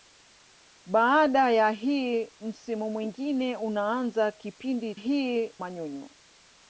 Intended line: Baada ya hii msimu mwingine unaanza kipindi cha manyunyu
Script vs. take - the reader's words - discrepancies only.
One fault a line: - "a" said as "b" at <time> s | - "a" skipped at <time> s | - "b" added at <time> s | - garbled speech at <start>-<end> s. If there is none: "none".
- "cha" said as "hii" at 4.9 s